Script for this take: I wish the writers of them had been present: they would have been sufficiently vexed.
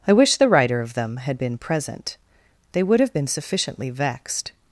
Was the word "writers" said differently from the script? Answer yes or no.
yes